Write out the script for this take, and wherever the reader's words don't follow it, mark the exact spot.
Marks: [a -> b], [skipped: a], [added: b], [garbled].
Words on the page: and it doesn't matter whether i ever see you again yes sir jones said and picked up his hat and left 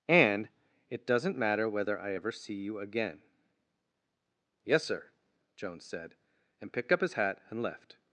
and it doesn't matter whether i ever see you again yes sir jones said and picked up his hat and left